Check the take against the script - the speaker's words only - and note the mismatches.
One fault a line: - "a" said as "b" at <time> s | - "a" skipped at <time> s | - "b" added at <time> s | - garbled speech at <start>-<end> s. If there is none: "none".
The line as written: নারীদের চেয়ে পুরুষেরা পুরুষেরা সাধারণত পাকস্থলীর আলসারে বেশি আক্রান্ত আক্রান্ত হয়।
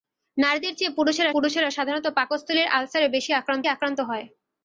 none